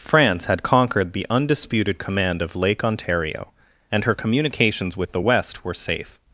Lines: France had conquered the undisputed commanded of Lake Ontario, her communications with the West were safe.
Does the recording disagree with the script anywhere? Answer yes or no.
yes